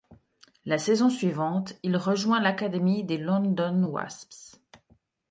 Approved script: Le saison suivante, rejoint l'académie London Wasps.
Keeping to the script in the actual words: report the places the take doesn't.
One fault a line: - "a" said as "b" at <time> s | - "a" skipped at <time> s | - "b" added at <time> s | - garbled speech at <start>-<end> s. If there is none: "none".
- "Le" said as "La" at 0.7 s
- "il" added at 1.8 s
- "des" added at 3.0 s